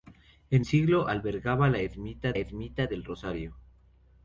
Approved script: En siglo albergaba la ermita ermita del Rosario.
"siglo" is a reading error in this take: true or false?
false